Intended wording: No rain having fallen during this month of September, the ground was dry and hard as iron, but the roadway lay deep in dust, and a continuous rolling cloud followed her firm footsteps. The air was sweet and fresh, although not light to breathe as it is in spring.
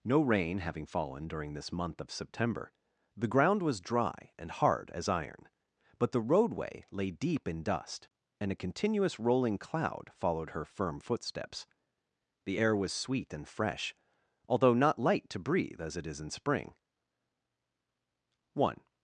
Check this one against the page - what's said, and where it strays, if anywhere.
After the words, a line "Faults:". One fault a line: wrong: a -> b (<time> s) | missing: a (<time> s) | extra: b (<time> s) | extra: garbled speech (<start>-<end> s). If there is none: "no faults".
No rain having fallen during this month of September, the ground was dry and hard as iron, but the roadway lay deep in dust, and a continuous rolling cloud followed her firm footsteps. The air was sweet and fresh, although not light to breathe as it is in spring. One
Faults:
extra: One (18.5 s)